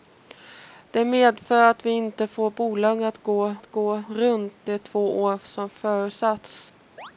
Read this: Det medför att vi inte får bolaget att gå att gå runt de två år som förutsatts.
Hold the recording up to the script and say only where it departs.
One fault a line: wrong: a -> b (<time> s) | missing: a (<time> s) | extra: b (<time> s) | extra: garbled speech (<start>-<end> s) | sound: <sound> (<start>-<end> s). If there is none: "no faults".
sound: chirp (7.0-7.1 s)